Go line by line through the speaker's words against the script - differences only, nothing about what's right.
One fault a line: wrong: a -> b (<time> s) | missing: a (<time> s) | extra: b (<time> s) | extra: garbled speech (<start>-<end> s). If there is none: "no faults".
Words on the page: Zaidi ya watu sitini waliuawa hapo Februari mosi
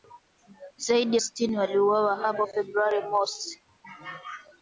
missing: ya watu (1.2 s)